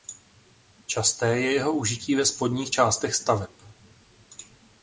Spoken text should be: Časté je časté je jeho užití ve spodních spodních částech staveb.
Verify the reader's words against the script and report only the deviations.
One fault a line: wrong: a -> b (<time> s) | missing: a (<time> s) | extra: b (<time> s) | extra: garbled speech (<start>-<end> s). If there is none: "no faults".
missing: časté je (1.5 s)
missing: spodních (2.7 s)